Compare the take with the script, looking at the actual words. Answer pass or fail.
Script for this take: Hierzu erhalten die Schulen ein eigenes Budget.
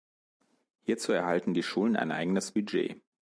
pass